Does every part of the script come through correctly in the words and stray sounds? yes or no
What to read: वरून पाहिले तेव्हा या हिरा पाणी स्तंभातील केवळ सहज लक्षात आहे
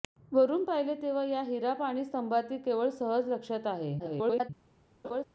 no